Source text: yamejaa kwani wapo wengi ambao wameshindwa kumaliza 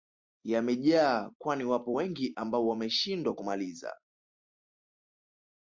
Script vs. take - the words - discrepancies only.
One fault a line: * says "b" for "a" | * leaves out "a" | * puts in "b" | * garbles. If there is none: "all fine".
all fine